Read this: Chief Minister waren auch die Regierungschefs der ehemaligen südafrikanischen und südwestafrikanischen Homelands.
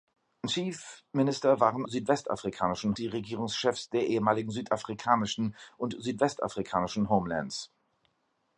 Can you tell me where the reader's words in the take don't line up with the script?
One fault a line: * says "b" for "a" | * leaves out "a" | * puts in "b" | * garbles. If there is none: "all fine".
* says "südwestafrikanischen" for "auch"